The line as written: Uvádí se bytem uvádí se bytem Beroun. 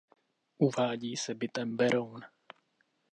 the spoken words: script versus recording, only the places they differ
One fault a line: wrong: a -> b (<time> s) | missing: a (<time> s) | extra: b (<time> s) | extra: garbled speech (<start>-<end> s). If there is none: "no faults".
missing: uvádí se bytem (1.8 s)